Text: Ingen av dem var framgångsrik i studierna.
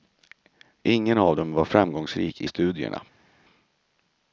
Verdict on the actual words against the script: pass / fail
pass